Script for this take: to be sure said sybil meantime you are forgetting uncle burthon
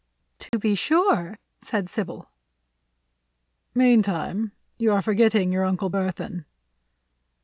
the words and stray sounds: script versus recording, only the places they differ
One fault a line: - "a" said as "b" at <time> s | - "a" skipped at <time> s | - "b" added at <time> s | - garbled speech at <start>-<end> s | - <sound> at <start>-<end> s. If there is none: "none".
- dropout at 0.5-0.5 s
- "your" added at 5.5 s